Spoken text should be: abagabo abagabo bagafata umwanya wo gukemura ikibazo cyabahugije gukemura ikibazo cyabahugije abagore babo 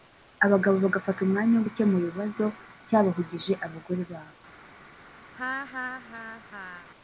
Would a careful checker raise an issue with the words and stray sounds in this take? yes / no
yes